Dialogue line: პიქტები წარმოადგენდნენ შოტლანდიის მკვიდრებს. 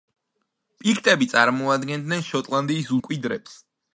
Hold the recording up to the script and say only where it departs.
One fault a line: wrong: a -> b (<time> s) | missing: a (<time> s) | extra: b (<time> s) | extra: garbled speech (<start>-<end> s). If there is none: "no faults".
no faults